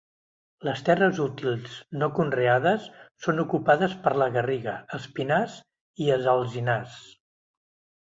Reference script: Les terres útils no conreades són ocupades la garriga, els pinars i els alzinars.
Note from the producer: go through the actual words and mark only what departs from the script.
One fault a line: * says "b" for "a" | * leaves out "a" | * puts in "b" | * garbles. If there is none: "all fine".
* puts in "per"